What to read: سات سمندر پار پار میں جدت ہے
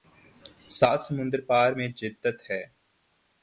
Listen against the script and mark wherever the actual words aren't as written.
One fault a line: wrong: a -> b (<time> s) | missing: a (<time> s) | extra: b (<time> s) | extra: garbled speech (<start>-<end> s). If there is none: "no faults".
missing: پار (1.7 s)